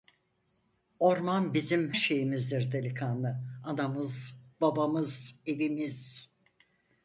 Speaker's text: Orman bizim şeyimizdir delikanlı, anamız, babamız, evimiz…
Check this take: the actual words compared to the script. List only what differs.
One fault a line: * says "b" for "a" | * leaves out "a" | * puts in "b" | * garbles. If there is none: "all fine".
all fine